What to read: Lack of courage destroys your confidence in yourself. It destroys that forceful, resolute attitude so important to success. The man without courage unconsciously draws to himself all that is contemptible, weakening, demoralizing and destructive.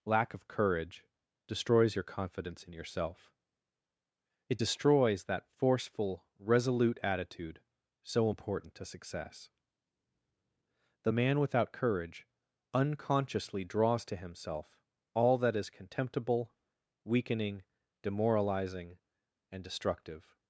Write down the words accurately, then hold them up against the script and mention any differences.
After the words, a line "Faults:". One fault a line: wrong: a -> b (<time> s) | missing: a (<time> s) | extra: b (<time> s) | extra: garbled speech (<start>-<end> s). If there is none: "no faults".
Lack of courage destroys your confidence in yourself. It destroys that forceful, resolute attitude so important to success. The man without courage unconsciously draws to himself all that is contemptible, weakening, demoralizing and destructive.
Faults:
no faults